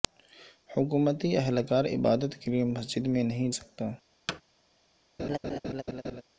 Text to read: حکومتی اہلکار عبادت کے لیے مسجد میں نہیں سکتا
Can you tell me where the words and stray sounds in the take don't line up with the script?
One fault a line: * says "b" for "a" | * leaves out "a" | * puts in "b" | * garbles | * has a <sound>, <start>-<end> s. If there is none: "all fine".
* has a thud, 4.3-4.4 s
* has a laugh, 5.2-6.2 s